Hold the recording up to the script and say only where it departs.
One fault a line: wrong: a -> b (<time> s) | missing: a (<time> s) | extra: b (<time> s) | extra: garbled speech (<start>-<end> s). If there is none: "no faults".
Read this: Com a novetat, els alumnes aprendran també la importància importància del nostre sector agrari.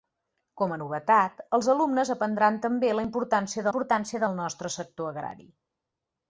no faults